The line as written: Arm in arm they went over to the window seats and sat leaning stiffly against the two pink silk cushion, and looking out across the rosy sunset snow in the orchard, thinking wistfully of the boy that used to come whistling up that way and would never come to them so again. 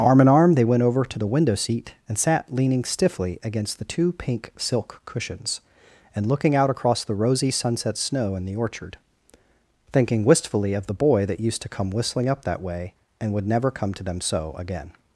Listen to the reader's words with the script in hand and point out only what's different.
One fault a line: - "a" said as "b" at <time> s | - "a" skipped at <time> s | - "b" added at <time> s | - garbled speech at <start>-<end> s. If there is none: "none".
- "seats" said as "seat" at 1.5 s
- "cushion" said as "cushions" at 5.0 s